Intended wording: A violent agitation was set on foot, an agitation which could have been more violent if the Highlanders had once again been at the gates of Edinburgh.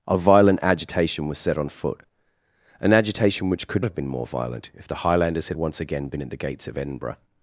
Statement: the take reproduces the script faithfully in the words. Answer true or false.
true